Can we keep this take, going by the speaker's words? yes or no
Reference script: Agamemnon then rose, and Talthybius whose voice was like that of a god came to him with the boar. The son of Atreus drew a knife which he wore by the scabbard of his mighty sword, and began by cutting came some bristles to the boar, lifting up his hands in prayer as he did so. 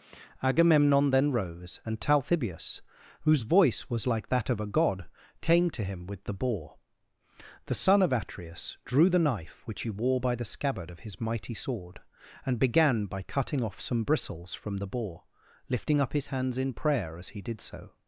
no